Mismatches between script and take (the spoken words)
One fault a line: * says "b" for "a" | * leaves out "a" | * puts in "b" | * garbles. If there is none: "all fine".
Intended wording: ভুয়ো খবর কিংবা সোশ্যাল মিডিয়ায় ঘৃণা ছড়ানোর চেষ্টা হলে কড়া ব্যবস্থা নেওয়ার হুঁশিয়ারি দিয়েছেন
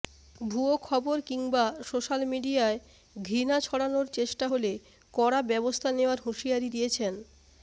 all fine